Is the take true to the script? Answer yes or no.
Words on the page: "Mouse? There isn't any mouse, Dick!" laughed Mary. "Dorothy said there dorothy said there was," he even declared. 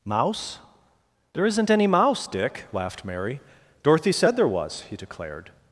no